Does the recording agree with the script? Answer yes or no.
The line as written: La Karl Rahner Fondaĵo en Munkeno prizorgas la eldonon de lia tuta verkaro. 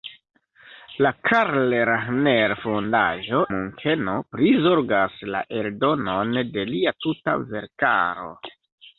no